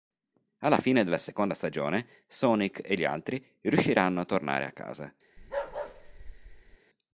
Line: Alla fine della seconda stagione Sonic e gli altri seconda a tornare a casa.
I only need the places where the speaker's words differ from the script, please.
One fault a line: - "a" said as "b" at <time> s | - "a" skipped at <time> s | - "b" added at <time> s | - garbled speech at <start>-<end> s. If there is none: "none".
- "seconda" said as "riusciranno" at 3.6 s